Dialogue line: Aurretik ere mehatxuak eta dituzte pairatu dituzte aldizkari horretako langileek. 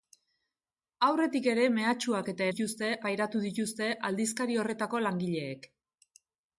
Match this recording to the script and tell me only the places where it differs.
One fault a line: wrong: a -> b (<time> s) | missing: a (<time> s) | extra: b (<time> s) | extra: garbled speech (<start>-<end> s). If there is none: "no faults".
no faults